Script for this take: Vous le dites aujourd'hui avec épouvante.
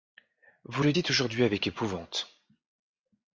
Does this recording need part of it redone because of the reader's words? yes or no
no